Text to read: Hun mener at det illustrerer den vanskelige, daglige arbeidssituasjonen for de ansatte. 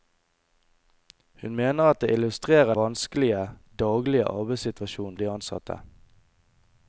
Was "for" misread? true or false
true